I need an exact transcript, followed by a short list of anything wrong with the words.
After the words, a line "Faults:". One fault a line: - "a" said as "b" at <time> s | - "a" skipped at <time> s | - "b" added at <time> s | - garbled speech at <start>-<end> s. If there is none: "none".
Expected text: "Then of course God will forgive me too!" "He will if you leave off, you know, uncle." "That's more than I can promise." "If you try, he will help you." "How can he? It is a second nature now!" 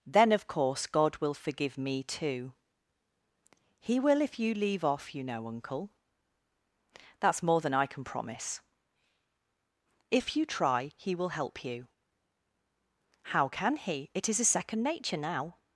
"Then of course God will forgive me too!" "He will if you leave off, you know, uncle." "That's more than I can promise." "If you try, he will help you." "How can he? It is a second nature now!"
Faults:
none